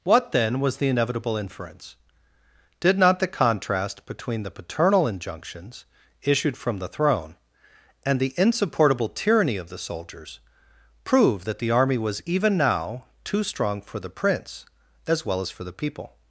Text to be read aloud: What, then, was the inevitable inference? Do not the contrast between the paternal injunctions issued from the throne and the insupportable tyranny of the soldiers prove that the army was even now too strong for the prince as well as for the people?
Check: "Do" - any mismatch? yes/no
yes